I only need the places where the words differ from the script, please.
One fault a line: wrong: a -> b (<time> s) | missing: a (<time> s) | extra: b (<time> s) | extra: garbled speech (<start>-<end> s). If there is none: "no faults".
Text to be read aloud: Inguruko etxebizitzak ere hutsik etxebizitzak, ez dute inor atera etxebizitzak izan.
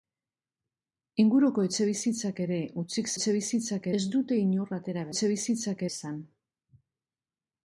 no faults